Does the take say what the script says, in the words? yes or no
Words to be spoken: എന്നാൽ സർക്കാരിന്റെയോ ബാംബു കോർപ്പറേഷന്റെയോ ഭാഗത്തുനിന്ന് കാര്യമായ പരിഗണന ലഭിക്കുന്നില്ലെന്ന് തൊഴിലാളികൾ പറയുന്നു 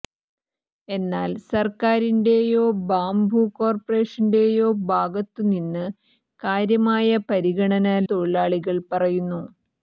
no